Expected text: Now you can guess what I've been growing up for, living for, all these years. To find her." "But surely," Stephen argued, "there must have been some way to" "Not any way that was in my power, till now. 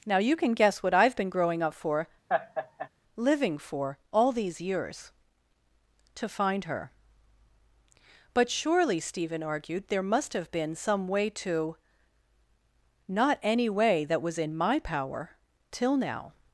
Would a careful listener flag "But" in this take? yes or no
no